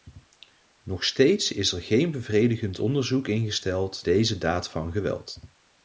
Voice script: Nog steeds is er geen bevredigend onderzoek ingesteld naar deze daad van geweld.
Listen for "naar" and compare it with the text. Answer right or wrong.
wrong